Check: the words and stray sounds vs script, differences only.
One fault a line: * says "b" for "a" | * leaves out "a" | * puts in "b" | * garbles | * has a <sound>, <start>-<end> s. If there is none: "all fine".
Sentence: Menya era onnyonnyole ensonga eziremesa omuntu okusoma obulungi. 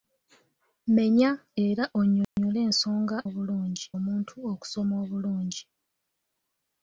* has a dropout, 2.2-2.4 s
* says "obulungi" for "eziremesa"